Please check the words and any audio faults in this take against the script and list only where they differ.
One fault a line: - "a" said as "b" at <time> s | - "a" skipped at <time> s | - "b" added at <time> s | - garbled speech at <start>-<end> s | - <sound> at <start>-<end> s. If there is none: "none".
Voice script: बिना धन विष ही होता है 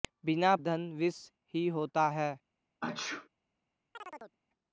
- sneeze at 2.8-3.3 s
- chirp at 3.9-4.4 s